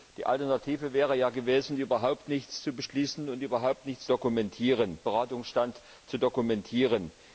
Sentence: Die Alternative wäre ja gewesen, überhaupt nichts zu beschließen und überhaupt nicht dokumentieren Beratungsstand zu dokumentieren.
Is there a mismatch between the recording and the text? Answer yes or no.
no